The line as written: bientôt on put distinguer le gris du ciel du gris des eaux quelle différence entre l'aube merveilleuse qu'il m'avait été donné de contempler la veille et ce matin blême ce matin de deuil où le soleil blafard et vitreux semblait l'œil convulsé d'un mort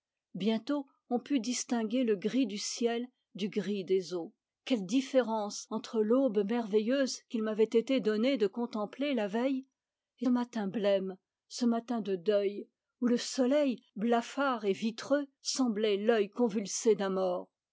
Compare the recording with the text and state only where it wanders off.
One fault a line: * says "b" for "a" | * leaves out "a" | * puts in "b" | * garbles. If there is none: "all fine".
* leaves out "ce"